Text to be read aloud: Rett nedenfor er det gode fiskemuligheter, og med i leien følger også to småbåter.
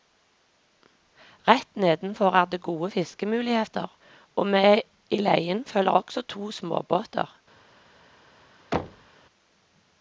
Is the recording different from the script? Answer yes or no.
no